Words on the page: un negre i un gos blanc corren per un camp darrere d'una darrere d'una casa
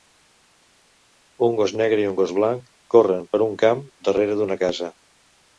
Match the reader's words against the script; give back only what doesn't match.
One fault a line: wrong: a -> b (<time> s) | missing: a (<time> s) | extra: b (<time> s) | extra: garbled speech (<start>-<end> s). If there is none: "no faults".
extra: gos (1.6 s)
missing: darrere d'una (4.6 s)